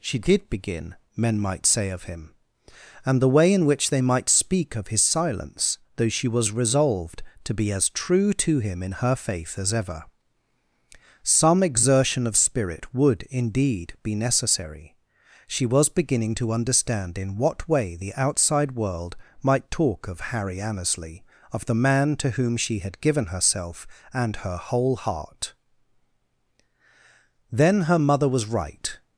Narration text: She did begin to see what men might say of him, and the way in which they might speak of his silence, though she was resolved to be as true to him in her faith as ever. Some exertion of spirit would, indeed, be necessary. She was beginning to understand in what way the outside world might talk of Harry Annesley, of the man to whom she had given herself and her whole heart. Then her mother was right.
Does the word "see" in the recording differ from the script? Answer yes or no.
yes